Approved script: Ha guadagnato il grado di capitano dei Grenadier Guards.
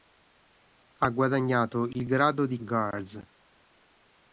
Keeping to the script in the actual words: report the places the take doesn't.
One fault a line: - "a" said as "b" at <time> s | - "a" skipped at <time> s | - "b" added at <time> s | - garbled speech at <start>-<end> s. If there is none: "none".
- "capitano dei Grenadier" skipped at 2.6 s